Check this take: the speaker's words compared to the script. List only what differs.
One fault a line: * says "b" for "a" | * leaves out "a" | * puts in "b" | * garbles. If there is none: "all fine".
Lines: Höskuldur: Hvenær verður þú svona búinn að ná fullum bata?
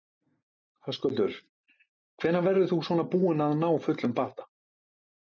all fine